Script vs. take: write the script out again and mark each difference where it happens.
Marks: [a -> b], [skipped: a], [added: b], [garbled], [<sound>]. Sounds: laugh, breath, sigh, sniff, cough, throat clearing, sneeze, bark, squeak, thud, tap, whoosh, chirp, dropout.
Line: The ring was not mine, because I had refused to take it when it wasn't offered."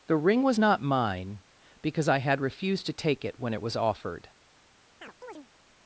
The ring was not mine, because I had refused to take it when it [wasn't -> was] offered." [chirp]